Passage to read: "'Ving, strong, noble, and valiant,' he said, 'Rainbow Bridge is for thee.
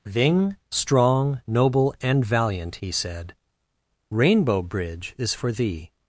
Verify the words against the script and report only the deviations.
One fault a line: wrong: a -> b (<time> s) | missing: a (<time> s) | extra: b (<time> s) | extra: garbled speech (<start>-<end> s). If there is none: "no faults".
no faults